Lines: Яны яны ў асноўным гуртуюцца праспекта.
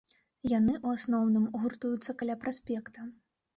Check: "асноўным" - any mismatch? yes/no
no